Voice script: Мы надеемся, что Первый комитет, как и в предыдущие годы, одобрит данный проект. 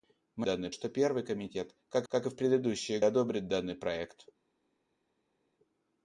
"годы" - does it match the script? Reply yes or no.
no